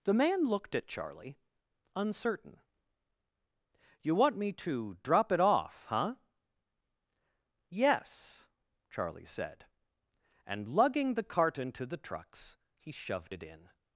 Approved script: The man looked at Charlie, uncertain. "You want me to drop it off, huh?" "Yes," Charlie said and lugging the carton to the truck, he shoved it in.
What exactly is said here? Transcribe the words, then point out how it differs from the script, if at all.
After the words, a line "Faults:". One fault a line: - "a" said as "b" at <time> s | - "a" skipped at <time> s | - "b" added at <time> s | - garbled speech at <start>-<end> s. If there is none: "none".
The man looked at Charlie, uncertain. "You want me to drop it off, huh?" "Yes," Charlie said and lugging the carton to the trucks, he shoved it in.
Faults:
- "truck" said as "trucks" at 12.0 s